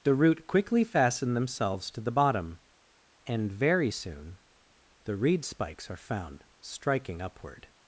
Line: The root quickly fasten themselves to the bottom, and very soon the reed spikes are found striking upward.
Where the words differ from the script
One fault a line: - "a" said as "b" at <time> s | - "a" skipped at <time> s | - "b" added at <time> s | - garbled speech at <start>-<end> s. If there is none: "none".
none